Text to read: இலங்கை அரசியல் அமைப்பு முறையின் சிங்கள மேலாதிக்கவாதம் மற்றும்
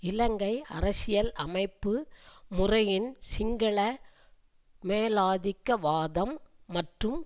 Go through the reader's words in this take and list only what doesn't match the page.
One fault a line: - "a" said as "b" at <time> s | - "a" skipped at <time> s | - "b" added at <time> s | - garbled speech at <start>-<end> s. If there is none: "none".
none